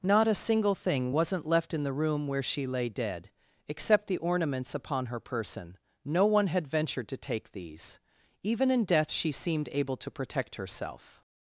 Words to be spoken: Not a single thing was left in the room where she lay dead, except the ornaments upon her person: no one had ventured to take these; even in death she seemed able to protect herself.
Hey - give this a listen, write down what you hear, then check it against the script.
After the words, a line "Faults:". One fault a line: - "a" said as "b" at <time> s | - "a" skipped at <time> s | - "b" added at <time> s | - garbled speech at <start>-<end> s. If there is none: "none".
Not a single thing wasn't left in the room where she lay dead, except the ornaments upon her person: no one had ventured to take these; even in death she seemed able to protect herself.
Faults:
- "was" said as "wasn't" at 1.1 s